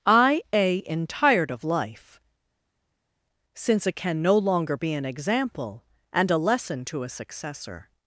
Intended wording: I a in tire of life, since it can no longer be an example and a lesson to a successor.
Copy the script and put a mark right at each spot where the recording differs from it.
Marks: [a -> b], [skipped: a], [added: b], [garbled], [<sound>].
I a in [tire -> tired] of life, since it can no longer be an example and a lesson to a successor.